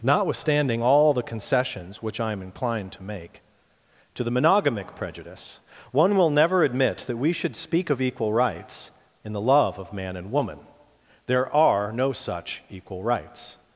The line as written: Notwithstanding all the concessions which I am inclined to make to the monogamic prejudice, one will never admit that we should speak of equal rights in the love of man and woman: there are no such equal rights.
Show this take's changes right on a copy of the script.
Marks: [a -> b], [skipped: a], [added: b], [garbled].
Notwithstanding all the concessions which I am inclined to make to the monogamic prejudice, one will never admit that we should speak of equal rights in the love of man and woman: there are no such equal rights.